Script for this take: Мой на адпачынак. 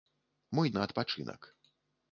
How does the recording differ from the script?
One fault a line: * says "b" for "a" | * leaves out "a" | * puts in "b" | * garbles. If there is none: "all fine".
all fine